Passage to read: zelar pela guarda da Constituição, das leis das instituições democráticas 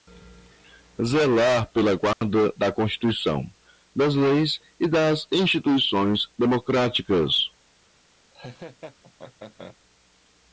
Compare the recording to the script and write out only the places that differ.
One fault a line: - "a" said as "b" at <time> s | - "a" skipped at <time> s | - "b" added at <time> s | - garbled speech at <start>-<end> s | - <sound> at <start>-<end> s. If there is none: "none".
- dropout at 2.1-2.2 s
- "e" added at 4.8 s
- laugh at 8.3-9.8 s